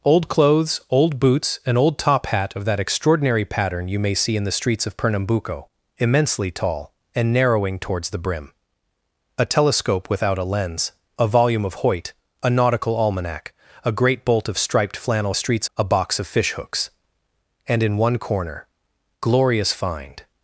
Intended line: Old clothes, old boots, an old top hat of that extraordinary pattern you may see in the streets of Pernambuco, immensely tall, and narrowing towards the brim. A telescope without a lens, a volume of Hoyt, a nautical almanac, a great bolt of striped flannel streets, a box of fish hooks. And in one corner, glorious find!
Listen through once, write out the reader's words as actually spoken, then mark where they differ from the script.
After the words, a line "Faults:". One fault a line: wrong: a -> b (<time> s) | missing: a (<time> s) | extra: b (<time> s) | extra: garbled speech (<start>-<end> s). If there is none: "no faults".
Old clothes, old boots, an old top hat of that extraordinary pattern you may see in the streets of Pernambuco, immensely tall, and narrowing towards the brim. A telescope without a lens, a volume of Hoyt, a nautical almanac, a great bolt of striped flannel streets, a box of fish hooks. And in one corner, glorious find!
Faults:
no faults